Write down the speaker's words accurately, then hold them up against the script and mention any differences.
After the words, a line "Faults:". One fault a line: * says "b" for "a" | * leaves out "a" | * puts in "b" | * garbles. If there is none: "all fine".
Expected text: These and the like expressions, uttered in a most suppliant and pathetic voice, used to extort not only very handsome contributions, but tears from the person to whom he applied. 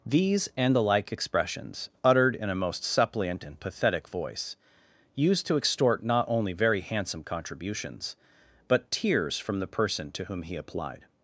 These and the like expressions, uttered in a most suppliant and pathetic voice, used to extort not only very handsome contributions, but tears from the person to whom he applied.
Faults:
all fine